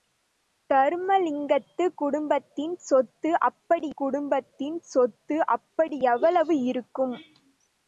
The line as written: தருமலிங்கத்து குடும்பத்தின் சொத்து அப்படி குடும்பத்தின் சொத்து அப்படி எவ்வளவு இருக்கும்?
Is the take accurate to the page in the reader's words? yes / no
yes